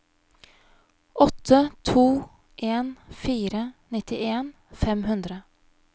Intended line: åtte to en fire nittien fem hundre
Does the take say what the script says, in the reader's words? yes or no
yes